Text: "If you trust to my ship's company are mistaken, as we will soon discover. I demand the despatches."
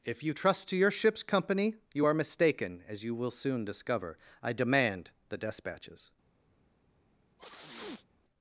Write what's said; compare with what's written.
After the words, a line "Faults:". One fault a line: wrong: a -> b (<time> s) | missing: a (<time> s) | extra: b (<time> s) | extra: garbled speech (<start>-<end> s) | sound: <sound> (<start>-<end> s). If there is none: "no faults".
"If you trust to your ship's company you are mistaken, as you will soon discover. I demand the despatches."
Faults:
wrong: my -> your (0.8 s)
extra: you (1.9 s)
wrong: we -> you (3.0 s)
sound: sneeze (7.4-8.1 s)